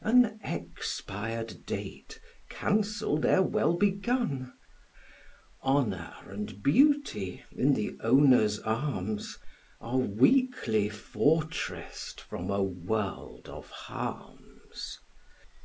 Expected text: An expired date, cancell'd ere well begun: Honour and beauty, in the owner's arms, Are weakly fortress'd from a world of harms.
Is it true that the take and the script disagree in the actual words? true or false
false